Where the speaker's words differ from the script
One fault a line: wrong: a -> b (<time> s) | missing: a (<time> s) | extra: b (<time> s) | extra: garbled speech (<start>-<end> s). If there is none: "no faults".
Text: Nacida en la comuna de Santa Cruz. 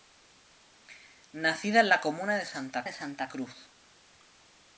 extra: de Santa (2.8 s)